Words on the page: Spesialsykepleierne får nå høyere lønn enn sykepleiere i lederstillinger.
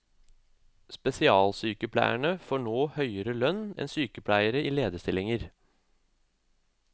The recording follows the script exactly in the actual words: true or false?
true